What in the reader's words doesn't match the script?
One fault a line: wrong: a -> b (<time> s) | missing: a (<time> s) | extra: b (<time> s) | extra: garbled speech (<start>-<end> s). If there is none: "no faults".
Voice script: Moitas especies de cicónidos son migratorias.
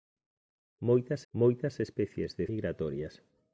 extra: moitas (1.3 s)
missing: cicónidos son (2.5 s)